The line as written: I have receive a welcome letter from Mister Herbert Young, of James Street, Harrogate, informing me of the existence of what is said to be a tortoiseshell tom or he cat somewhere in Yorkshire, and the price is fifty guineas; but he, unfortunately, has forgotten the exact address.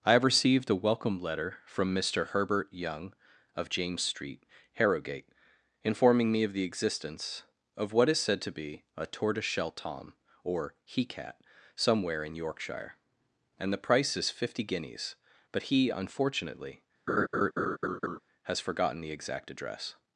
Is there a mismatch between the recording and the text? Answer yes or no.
yes